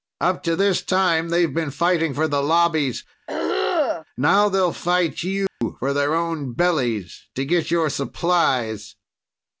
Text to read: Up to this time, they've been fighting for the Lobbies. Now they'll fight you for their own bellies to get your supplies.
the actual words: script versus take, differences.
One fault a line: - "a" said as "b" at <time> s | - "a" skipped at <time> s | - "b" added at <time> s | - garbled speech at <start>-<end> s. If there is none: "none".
none